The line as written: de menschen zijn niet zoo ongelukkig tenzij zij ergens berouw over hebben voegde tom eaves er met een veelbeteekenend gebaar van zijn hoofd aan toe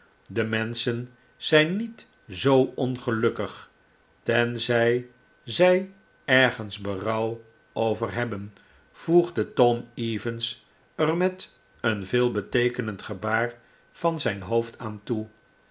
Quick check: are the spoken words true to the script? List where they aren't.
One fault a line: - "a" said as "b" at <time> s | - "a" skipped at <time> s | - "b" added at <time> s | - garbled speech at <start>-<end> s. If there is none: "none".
none